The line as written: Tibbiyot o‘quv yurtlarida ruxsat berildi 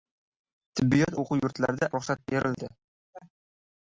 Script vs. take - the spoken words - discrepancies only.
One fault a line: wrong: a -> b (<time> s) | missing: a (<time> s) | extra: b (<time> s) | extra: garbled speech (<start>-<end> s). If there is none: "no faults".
no faults